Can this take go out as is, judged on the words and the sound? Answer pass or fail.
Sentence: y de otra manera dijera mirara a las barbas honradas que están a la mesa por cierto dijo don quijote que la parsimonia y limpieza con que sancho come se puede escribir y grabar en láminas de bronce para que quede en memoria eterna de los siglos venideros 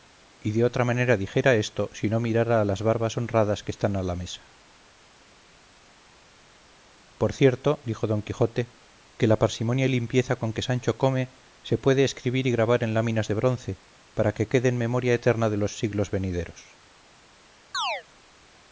fail